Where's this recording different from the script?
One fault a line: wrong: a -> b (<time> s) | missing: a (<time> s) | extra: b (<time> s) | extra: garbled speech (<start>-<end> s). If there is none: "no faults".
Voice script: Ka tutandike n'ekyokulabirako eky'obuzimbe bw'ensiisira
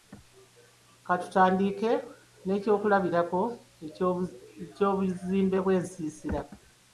no faults